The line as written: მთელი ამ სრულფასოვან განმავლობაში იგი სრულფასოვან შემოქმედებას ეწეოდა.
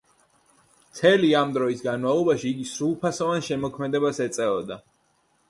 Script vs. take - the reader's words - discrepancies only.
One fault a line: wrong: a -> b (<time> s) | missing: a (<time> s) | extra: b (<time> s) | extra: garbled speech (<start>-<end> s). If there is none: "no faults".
wrong: სრულფასოვან -> დროის (1.6 s)